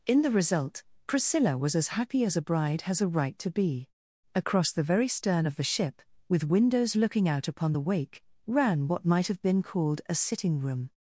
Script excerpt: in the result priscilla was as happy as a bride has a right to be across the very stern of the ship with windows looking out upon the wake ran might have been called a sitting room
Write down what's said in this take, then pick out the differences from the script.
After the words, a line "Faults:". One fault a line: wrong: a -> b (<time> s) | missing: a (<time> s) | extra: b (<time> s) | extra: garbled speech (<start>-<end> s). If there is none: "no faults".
in the result priscilla was as happy as a bride has a right to be across the very stern of the ship with windows looking out upon the wake ran what might have been called a sitting room
Faults:
extra: what (8.9 s)